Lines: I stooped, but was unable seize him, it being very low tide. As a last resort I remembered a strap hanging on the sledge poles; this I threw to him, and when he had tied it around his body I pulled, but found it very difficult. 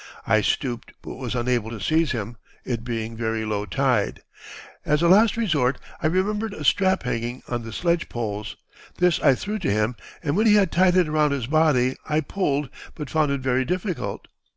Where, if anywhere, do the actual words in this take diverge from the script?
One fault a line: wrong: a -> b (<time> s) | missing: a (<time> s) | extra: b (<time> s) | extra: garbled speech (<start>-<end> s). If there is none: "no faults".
extra: to (1.7 s)